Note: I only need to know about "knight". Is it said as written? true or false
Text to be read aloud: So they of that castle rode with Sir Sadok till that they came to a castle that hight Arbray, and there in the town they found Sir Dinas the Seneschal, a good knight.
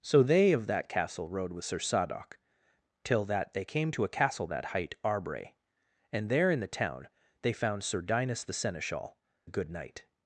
true